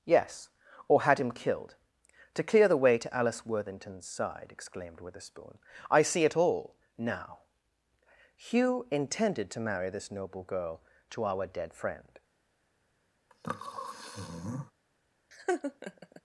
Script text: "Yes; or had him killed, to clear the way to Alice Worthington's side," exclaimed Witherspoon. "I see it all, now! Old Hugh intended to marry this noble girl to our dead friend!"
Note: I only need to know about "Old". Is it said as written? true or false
false